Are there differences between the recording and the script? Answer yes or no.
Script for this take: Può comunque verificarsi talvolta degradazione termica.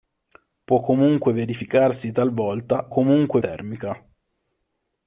yes